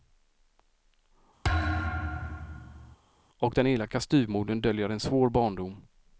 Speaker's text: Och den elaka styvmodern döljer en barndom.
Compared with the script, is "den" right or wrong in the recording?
right